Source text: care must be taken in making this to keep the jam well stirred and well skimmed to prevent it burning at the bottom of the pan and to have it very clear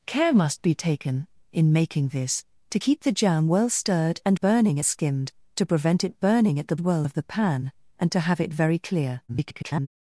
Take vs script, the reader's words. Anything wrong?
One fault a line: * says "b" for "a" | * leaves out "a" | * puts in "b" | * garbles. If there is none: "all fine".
* says "burning" for "well"
* says "well" for "bottom"
* garbles